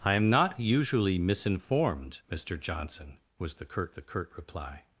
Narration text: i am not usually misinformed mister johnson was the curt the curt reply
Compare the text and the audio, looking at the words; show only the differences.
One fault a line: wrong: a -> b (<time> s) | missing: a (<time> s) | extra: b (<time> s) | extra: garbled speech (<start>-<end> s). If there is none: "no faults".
no faults